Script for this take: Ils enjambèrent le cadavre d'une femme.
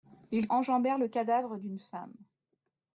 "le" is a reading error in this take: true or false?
false